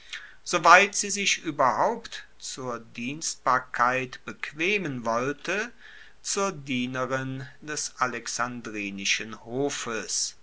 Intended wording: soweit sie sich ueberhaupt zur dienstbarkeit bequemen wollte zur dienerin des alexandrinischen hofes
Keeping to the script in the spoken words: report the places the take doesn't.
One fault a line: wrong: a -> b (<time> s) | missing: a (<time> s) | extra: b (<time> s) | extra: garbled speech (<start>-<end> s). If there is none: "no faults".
no faults